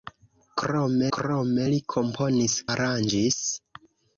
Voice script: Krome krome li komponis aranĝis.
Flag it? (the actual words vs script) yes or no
no